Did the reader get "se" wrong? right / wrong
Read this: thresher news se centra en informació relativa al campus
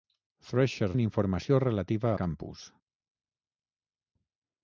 wrong